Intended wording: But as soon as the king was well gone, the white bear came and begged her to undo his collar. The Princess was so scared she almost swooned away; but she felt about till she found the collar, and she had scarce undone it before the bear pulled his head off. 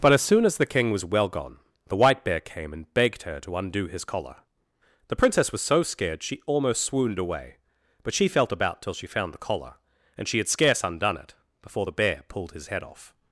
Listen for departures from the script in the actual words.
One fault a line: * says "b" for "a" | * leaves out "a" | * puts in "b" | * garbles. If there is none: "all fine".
all fine